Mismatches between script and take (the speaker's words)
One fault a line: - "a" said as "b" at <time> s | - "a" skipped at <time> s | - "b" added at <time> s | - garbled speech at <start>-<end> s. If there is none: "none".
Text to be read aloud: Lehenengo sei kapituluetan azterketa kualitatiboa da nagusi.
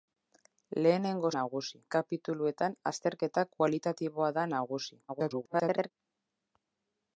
- "sei" said as "nagusi" at 1.4 s
- garbled speech at 5.1-5.9 s